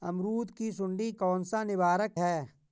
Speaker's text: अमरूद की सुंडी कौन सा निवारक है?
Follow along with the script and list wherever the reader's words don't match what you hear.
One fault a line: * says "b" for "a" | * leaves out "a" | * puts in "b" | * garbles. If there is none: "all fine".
all fine